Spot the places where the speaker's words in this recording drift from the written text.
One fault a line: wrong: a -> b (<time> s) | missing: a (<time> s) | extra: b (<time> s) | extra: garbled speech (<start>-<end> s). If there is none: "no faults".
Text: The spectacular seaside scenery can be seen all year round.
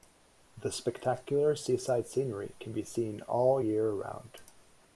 no faults